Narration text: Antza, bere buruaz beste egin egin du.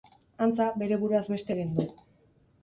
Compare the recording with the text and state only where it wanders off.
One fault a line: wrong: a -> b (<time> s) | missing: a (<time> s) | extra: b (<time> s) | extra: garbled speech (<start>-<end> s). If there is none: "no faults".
missing: egin (1.8 s)